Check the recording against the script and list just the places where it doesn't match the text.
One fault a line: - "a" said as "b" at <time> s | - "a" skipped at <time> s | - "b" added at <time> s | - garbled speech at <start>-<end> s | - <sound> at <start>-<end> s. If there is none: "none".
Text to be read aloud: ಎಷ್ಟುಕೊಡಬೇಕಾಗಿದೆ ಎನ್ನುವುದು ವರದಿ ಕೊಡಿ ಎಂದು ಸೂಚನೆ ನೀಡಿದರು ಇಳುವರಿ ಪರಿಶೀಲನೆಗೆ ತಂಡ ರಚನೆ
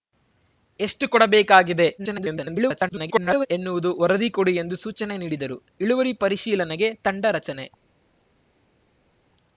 - garbled speech at 2.0-3.5 s